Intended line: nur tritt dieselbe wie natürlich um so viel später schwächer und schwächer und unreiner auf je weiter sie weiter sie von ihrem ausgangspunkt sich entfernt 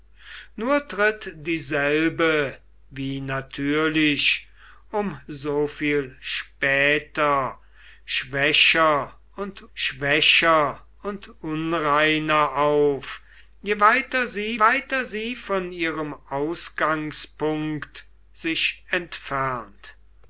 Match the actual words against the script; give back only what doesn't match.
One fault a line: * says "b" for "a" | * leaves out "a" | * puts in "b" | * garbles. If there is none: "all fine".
all fine